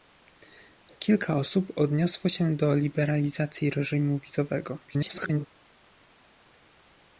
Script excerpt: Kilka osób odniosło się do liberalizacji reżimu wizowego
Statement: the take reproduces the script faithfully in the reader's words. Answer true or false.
false